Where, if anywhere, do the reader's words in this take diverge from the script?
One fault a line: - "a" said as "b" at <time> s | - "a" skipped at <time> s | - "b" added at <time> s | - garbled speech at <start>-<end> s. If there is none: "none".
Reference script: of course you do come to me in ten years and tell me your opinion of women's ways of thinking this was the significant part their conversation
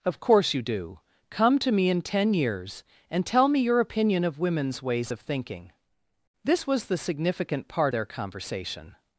none